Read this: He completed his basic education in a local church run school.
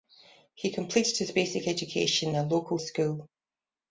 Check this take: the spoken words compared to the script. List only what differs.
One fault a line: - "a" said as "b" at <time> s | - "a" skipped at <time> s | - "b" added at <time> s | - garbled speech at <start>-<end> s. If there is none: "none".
- "in" skipped at 2.3 s
- "church run" skipped at 2.8 s